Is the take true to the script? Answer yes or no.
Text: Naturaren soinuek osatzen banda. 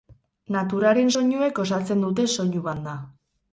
no